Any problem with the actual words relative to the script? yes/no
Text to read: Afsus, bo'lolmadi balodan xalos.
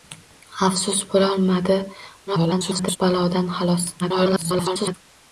yes